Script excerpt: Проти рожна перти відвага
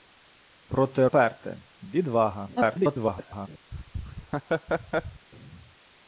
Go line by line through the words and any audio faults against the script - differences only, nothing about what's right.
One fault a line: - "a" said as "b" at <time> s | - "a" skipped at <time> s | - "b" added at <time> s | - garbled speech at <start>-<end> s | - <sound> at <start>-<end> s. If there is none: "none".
- "рожна" skipped at 1.1 s
- garbled speech at 2.6-3.5 s
- laugh at 3.7-5.3 s